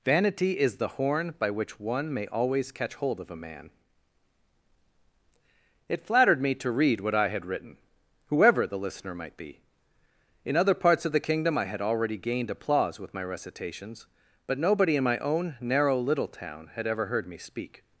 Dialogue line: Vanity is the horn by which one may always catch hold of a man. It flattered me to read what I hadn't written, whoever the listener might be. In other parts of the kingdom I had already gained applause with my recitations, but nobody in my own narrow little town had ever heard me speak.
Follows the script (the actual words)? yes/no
no